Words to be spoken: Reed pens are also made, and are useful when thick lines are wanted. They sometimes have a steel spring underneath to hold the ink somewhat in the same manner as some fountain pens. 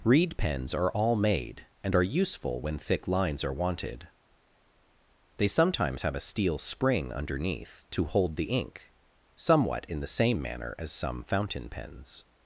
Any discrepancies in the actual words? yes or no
yes